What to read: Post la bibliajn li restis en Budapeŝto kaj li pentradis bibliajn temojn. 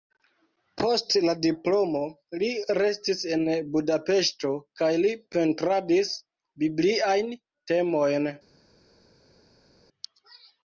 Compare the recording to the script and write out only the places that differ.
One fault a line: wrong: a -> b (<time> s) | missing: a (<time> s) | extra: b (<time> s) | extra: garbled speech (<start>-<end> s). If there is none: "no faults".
wrong: bibliajn -> diplomo (1.4 s)